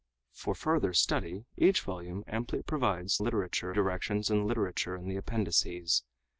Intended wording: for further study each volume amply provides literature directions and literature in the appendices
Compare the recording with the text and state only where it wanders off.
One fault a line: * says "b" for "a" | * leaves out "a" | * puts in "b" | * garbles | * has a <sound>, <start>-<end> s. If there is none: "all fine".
all fine